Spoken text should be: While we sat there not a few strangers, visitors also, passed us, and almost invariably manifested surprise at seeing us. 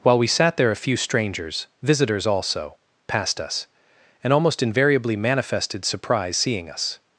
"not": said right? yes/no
no